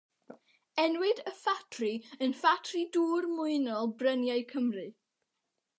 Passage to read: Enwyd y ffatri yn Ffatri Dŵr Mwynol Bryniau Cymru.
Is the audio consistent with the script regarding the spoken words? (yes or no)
yes